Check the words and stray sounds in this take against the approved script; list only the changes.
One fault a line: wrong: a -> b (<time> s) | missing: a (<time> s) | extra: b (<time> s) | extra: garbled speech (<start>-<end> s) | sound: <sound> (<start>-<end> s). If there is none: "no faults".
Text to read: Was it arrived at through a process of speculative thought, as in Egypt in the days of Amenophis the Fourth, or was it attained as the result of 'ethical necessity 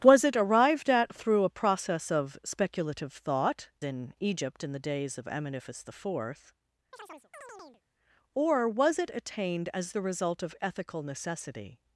missing: as (3.7 s)
sound: chirp (6.9-7.8 s)